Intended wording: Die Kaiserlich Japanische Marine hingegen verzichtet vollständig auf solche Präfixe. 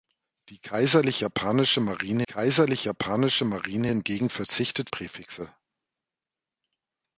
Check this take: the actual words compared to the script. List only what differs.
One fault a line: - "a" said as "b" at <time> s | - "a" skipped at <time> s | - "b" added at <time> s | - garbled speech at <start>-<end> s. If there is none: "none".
- "hingegen verzichtet vollständig auf solche" said as "Kaiserlich Japanische Marine hingegen verzichtet" at 2.2 s